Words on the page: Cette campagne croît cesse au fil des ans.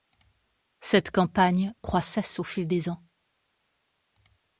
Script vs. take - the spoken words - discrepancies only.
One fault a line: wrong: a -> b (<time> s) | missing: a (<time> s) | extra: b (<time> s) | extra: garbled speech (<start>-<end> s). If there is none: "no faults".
no faults